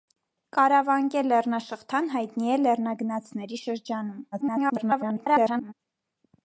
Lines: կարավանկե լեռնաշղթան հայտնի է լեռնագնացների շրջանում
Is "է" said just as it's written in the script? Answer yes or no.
yes